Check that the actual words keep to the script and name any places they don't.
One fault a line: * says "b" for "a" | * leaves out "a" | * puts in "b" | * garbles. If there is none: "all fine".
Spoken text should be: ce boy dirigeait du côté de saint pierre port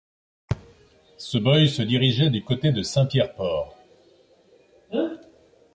* puts in "se"